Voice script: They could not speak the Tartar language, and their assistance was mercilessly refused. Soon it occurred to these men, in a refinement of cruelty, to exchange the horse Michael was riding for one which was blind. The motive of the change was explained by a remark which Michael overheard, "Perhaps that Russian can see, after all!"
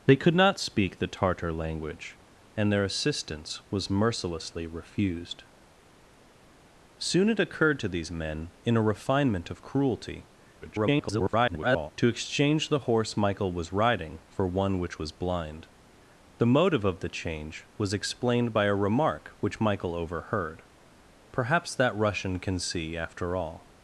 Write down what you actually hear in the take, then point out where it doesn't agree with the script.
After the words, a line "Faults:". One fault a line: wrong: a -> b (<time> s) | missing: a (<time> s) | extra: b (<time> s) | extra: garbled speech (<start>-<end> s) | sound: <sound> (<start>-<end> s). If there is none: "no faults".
They could not speak the Tartar language, and their assistance was mercilessly refused. Soon it occurred to these men, in a refinement of cruelty, [garbled] to exchange the horse Michael was riding for one which was blind. The motive of the change was explained by a remark which Michael overheard, "Perhaps that Russian can see, after all!"
Faults:
extra: garbled speech (10.6-11.9 s)